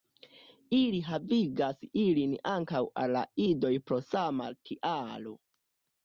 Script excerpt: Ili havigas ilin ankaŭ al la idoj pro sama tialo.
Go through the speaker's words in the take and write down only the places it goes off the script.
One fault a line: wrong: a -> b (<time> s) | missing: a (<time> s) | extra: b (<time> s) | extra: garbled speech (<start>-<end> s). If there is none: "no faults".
no faults